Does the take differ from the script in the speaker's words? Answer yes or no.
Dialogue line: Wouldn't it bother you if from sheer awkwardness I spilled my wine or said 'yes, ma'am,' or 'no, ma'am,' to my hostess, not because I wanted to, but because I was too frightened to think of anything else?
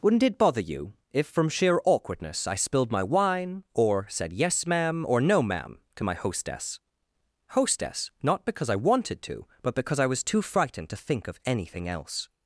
yes